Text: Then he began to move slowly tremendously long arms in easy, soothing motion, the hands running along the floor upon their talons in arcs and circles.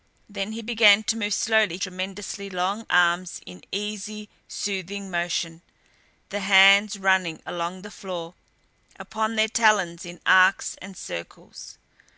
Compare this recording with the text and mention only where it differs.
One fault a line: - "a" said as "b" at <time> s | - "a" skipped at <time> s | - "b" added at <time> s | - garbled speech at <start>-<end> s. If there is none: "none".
none